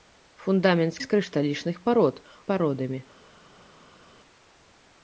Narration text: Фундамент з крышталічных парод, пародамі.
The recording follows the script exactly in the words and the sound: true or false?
true